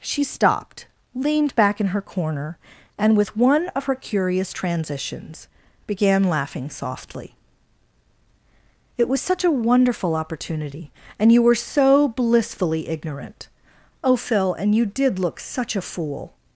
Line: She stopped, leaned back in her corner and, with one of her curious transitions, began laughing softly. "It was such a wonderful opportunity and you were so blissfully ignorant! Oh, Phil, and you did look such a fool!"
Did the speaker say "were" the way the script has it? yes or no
yes